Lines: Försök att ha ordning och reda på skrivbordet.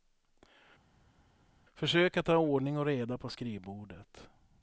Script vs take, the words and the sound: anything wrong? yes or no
no